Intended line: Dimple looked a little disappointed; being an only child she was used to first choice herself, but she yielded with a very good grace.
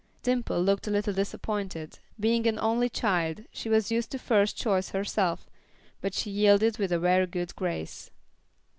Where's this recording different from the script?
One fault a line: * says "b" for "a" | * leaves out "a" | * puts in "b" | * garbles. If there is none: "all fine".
all fine